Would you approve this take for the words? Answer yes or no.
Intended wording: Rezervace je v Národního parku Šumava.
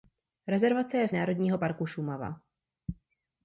yes